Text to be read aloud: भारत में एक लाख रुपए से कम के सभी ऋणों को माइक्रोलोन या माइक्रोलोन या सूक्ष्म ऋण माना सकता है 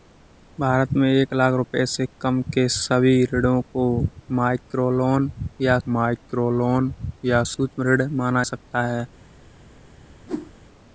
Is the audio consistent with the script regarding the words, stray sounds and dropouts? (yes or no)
no